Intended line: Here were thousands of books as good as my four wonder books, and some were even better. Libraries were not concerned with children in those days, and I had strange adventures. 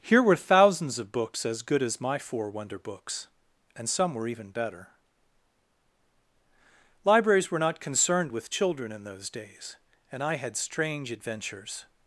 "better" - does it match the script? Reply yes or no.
yes